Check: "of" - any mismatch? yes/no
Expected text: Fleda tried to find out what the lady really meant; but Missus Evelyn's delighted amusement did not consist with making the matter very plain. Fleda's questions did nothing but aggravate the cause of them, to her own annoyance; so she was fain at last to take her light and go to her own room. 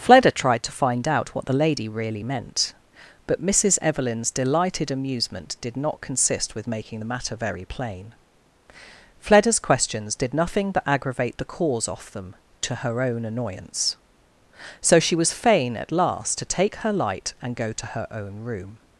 yes